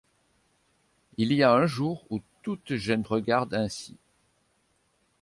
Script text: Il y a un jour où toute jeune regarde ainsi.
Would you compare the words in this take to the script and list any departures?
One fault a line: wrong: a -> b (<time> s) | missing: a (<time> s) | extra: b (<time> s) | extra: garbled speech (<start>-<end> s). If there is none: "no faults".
no faults